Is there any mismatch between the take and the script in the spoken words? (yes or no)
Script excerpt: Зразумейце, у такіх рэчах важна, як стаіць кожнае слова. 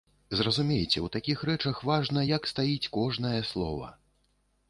no